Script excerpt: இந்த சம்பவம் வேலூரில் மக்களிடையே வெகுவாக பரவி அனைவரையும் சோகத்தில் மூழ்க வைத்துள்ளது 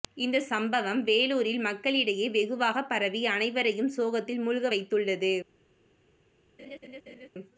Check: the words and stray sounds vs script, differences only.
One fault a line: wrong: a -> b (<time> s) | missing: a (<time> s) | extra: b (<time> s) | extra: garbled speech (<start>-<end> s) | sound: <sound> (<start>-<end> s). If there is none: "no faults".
sound: laugh (6.6-7.3 s)